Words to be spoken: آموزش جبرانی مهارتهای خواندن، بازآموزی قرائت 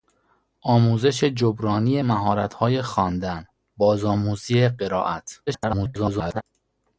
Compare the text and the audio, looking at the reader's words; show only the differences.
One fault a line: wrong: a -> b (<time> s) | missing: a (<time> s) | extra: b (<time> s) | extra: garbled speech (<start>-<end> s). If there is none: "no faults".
extra: garbled speech (5.5-6.4 s)